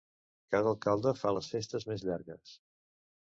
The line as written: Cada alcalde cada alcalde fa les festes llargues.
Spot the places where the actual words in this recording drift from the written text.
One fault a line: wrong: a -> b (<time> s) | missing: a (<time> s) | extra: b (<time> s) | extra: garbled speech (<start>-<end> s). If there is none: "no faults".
missing: cada alcalde (1.1 s)
extra: més (1.9 s)